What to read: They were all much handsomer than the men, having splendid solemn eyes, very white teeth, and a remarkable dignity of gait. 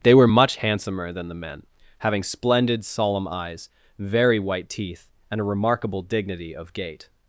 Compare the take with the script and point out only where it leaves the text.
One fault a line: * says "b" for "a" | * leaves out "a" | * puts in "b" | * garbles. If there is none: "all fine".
* leaves out "all"